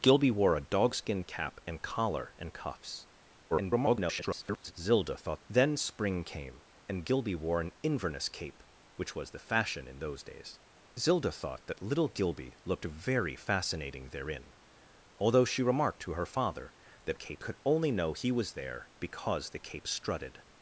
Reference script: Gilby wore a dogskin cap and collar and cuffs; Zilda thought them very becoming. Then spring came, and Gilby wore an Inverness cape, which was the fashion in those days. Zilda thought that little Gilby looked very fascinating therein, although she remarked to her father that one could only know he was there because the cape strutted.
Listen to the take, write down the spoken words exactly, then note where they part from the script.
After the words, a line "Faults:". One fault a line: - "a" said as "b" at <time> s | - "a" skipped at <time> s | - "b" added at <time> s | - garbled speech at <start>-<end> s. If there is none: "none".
Gilby wore a dogskin cap and collar and cuffs; [garbled] Zilda thought. Then spring came, and Gilby wore an Inverness cape, which was the fashion in those days. Zilda thought that little Gilby looked very fascinating therein, although she remarked to her father that cape could only know he was there because the cape strutted.
Faults:
- garbled speech at 3.5-4.7 s
- "them very becoming" skipped at 5.4 s
- "one" said as "cape" at 17.1 s